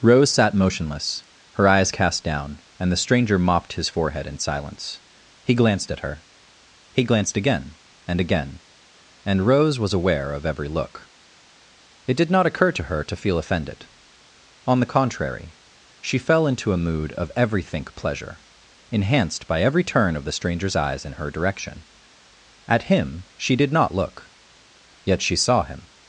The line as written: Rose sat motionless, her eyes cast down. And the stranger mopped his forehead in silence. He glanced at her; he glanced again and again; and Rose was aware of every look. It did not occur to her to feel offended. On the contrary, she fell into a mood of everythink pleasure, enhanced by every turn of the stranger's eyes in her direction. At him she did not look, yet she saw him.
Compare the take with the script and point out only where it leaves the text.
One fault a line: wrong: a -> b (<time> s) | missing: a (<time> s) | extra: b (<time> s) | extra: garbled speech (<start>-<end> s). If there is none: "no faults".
no faults